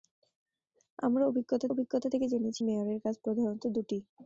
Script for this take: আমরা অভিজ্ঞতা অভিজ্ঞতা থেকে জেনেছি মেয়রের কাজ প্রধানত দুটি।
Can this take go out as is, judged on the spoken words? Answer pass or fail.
pass